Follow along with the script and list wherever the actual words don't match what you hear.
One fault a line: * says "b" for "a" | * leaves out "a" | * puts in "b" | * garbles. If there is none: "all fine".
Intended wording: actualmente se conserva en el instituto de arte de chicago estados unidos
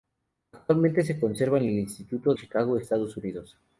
* leaves out "de arte de"